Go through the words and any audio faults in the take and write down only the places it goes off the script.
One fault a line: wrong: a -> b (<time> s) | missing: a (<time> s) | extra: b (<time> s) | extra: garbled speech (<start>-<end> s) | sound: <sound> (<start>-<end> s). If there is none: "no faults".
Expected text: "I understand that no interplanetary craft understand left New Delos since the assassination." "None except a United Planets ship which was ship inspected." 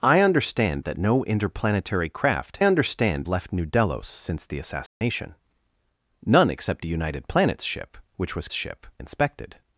sound: dropout (4.9-5.0 s)